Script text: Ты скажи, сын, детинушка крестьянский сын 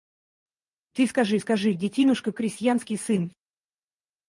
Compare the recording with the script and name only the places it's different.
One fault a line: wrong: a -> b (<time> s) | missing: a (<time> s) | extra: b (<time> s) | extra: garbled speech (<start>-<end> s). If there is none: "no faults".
wrong: сын -> скажи (1.4 s)